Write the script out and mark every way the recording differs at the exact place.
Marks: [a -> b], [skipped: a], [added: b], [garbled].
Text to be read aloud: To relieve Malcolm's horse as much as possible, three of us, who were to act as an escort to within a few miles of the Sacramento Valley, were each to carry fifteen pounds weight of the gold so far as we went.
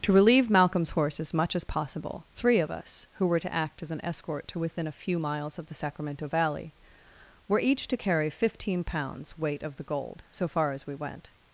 To relieve Malcolm's horse as much as possible, three of us, who were to act as an escort to within a few miles of the Sacramento Valley, were each to carry fifteen pounds weight of the gold so far as we went.